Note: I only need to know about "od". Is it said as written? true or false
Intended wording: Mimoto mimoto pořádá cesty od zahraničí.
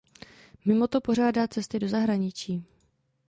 false